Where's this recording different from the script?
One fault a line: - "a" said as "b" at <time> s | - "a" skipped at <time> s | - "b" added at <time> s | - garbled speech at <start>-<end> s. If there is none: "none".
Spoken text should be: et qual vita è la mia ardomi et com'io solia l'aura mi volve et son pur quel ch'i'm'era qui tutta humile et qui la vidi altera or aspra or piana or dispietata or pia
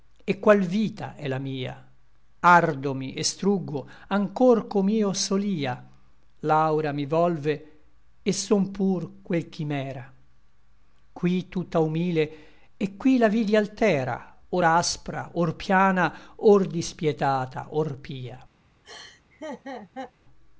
- "struggo anchor" added at 3.2 s